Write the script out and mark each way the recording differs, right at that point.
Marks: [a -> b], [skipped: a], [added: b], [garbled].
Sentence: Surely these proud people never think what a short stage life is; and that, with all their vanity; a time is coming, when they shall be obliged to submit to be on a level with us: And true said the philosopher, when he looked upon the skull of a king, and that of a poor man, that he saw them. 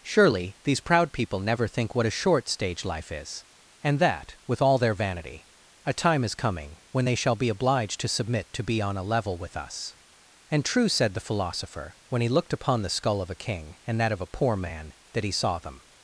Surely these proud people never think what a short stage life is; and that, with all their vanity; a time is coming, when they shall be obliged to submit to be on a level with us: And true said the philosopher, when he looked upon the skull of a king, and that of a poor man, that he saw them.